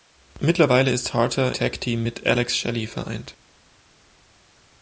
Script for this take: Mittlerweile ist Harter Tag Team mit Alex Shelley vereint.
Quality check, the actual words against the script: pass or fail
pass